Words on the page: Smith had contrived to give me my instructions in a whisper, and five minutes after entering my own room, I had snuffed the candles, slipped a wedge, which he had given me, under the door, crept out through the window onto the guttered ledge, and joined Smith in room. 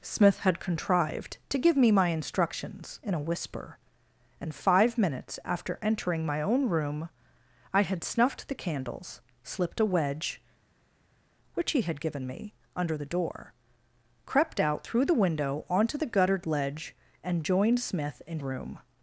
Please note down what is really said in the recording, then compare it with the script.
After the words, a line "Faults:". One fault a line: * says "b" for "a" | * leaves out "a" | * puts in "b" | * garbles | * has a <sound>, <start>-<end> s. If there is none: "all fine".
Smith had contrived to give me my instructions in a whisper, and five minutes after entering my own room, I had snuffed the candles, slipped a wedge, which he had given me, under the door, crept out through the window onto the guttered ledge, and joined Smith in room.
Faults:
all fine